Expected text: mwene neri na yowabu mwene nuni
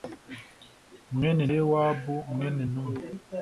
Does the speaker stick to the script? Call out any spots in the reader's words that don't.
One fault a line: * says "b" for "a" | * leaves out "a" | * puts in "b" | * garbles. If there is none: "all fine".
* leaves out "neri na"